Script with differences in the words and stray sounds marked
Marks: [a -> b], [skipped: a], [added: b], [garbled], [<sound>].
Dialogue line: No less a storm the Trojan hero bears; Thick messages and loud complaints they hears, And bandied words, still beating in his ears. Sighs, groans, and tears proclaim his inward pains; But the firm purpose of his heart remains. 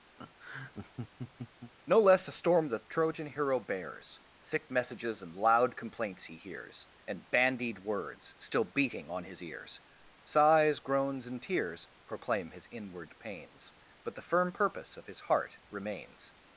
[laugh] No less a storm the Trojan hero bears; Thick messages and loud complaints [they -> he] hears, And bandied words, still beating [in -> on] his ears. Sighs, groans, and tears proclaim his inward pains; But the firm purpose of his heart remains.